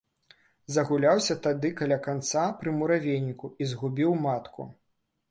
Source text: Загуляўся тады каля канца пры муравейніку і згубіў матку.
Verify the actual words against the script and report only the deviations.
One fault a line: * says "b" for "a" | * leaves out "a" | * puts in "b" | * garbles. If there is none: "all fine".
all fine